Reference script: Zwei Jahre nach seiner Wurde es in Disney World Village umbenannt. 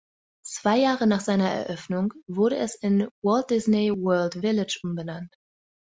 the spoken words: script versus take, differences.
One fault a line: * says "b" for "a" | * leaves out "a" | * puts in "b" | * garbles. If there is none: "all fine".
* puts in "Eröffnung"
* puts in "Walt"